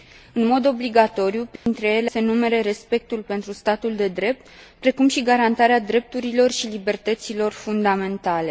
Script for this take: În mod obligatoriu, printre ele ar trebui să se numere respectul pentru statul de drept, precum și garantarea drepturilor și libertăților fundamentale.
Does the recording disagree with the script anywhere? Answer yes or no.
yes